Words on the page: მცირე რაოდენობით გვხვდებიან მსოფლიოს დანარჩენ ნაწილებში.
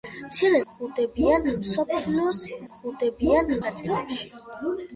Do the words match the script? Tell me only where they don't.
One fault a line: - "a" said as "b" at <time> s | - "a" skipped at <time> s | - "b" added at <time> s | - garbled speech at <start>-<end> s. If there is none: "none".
- "რაოდენობით" skipped at 0.6 s
- "დანარჩენ" said as "გვხვდებიან" at 2.7 s